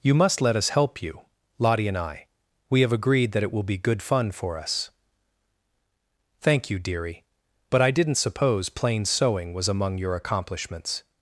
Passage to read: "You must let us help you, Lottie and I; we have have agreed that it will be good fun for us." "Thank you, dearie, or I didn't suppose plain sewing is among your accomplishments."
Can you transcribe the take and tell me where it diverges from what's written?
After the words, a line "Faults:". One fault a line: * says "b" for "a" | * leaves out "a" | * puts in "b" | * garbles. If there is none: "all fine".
"You must let us help you, Lottie and I; we have agreed that it will be good fun for us." "Thank you, dearie, but I didn't suppose plain sewing was among your accomplishments."
Faults:
* leaves out "have"
* says "but" for "or"
* says "was" for "is"